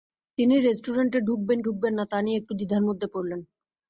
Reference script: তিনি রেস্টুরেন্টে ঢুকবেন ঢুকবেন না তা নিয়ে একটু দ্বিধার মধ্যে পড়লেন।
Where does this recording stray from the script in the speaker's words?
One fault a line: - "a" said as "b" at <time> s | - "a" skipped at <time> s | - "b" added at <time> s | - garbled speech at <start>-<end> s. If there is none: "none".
none